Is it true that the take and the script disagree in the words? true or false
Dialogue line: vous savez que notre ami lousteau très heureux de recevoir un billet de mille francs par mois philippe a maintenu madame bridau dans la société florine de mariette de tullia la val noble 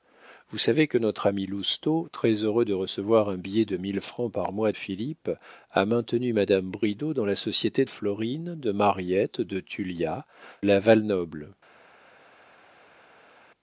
false